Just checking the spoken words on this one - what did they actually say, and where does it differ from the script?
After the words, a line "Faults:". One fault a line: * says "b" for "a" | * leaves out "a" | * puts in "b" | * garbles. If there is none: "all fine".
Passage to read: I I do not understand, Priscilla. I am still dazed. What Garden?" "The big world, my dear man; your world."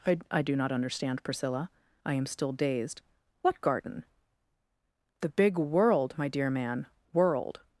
I I do not understand, Priscilla. I am still dazed. What Garden?" "The big world, my dear man; world."
Faults:
* leaves out "your"